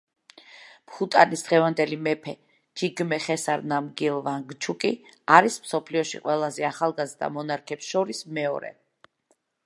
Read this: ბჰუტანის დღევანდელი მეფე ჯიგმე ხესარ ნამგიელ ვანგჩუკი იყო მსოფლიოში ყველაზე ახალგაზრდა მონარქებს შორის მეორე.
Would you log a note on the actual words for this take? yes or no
yes